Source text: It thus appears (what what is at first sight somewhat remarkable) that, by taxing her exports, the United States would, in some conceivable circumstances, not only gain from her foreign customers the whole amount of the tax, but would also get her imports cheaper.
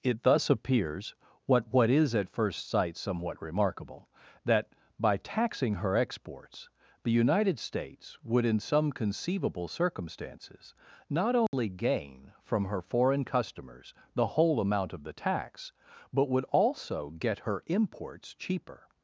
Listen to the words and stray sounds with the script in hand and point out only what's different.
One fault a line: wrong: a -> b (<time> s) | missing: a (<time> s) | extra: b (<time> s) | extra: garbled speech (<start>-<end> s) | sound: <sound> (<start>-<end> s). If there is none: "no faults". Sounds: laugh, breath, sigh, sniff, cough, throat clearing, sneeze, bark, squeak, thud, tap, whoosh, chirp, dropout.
sound: dropout (11.5-11.5 s)